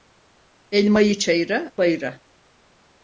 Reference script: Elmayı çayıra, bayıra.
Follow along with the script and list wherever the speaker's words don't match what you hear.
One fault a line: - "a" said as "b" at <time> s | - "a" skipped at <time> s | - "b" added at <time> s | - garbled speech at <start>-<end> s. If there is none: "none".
none